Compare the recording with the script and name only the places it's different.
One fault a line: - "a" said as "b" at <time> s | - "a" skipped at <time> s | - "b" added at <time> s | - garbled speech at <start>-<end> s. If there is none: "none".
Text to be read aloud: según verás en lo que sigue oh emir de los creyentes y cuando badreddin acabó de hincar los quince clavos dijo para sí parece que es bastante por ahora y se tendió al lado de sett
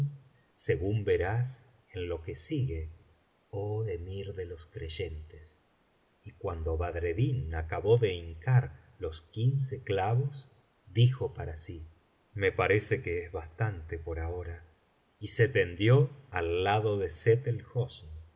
- "me" added at 12.3 s